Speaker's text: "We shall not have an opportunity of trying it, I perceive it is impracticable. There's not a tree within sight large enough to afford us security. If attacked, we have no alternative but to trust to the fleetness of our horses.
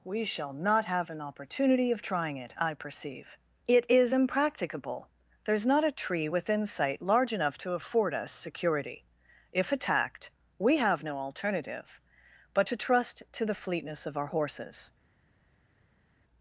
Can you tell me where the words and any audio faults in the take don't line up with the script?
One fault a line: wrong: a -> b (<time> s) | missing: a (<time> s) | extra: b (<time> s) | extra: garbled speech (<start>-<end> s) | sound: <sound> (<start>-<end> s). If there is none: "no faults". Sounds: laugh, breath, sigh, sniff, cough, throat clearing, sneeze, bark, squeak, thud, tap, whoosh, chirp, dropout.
no faults